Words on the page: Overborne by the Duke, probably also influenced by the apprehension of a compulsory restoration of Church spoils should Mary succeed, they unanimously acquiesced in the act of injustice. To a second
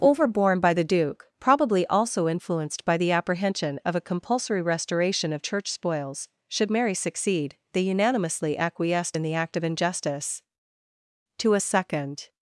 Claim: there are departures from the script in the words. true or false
false